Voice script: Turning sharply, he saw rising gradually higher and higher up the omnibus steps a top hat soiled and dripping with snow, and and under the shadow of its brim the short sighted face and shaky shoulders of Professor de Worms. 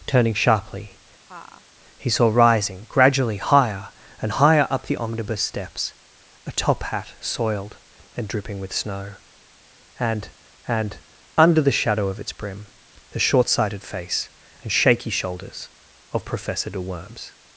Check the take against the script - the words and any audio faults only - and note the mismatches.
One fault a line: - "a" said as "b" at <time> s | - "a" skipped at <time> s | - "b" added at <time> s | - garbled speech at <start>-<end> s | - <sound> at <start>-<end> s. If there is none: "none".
- laugh at 1.2-1.6 s